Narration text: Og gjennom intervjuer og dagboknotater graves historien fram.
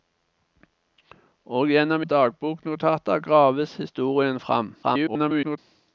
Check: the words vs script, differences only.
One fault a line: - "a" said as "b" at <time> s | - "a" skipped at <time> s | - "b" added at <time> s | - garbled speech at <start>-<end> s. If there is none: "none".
- "intervjuer" skipped at 2.0 s
- garbled speech at 4.8-5.6 s